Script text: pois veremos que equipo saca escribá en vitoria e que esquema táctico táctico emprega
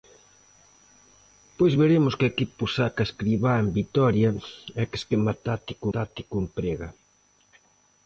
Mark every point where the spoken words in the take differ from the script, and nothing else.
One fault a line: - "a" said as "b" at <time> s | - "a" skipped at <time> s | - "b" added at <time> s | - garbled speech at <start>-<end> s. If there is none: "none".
none